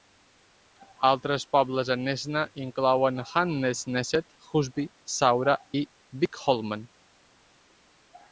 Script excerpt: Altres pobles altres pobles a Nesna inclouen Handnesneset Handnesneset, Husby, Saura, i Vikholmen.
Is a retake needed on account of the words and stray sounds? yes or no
yes